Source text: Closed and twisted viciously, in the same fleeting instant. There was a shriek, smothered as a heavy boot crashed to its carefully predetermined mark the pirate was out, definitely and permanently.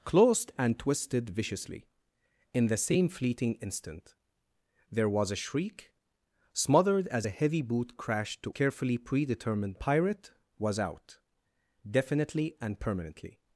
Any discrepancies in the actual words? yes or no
yes